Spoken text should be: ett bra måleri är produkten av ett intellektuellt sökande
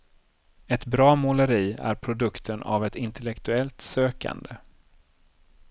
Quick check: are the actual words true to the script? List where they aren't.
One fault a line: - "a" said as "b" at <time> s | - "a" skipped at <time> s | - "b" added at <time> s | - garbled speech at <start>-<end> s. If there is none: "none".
none